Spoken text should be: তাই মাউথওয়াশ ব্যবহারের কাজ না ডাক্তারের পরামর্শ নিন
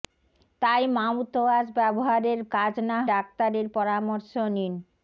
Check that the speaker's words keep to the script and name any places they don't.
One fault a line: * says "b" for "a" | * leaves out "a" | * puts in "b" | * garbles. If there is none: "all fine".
all fine